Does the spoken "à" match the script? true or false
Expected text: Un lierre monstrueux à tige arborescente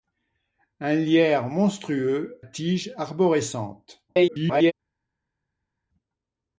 false